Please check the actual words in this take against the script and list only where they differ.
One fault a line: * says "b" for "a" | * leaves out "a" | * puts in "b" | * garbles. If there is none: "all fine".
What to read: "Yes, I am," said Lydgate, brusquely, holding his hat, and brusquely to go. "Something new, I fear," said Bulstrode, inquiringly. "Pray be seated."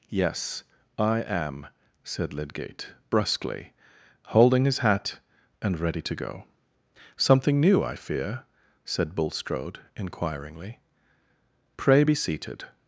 * says "ready" for "brusquely"